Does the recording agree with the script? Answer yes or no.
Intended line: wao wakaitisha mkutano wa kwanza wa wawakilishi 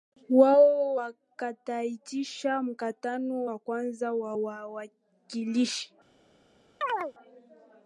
yes